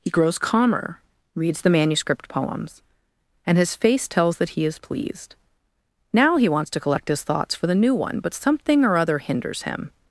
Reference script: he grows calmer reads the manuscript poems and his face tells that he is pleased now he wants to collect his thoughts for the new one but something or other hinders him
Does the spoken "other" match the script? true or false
true